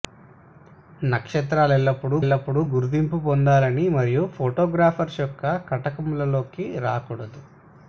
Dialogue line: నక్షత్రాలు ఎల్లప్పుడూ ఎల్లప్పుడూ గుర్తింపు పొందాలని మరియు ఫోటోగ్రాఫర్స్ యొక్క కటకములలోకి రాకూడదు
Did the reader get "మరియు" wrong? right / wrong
right